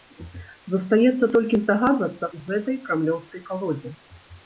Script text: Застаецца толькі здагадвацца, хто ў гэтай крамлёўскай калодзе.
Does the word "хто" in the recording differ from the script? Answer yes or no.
yes